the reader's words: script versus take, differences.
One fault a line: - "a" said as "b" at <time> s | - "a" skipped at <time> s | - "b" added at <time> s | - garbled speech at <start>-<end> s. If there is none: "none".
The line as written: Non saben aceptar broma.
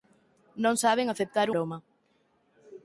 none